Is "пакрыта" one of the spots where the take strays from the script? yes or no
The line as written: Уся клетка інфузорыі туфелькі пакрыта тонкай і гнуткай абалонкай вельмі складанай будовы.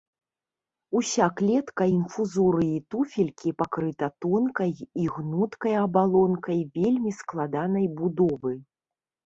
no